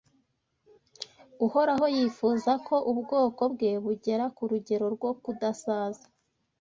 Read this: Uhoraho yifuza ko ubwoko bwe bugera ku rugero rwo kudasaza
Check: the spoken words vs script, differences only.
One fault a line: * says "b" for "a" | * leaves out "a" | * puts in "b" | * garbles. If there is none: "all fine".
all fine